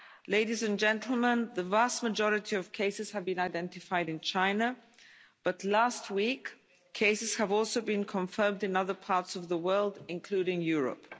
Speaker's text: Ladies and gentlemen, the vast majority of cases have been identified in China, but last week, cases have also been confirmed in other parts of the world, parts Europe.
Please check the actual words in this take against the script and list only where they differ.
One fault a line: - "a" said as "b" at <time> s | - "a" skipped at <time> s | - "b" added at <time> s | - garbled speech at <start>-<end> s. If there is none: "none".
- "parts" said as "including" at 10.1 s